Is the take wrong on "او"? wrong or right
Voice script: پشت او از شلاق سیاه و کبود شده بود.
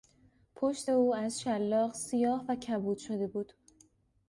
right